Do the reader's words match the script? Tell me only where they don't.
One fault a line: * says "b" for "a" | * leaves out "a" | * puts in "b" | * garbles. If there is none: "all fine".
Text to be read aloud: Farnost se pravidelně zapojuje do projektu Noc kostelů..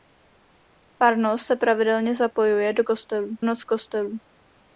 * says "kostelů" for "projektu"